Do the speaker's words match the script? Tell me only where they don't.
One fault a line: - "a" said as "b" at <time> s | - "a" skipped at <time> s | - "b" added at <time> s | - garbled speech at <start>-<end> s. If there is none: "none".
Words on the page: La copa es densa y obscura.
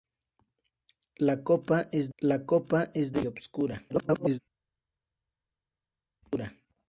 - "la copa es" added at 2.2 s
- garbled speech at 3.9-4.4 s